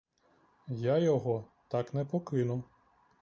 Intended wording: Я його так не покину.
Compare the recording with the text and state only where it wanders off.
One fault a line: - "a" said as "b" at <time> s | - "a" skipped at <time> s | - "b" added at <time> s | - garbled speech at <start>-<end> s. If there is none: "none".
none